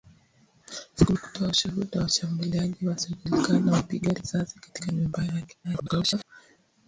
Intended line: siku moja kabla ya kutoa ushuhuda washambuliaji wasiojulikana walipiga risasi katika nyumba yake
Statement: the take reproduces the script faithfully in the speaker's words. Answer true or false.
false